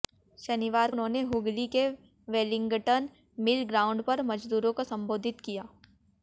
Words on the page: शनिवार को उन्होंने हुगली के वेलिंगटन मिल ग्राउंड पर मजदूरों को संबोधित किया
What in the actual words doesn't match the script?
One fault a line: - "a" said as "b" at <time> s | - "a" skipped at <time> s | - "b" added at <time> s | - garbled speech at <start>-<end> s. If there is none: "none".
- "को" skipped at 0.9 s